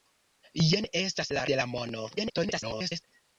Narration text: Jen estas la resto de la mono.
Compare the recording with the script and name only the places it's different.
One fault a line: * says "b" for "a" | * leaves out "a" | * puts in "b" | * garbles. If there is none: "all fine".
* leaves out "resto"
* garbles